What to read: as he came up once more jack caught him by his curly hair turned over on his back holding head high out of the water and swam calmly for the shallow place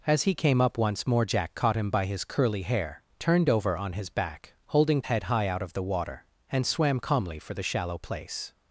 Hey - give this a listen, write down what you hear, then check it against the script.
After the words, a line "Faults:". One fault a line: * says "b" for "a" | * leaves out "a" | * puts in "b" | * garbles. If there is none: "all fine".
as he came up once more jack caught him by his curly hair turned over on his back holding head high out of the water and swam calmly for the shallow place
Faults:
all fine